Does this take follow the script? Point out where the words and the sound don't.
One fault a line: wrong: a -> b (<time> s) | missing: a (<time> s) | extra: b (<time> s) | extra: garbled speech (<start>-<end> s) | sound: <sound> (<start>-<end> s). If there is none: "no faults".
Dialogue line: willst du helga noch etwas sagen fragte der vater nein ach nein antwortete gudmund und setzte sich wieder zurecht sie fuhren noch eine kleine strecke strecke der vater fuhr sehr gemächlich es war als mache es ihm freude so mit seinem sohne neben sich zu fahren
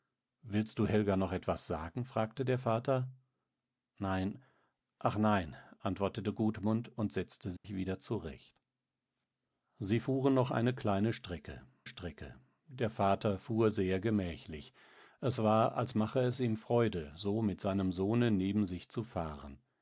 sound: dropout (7.6-7.6 s)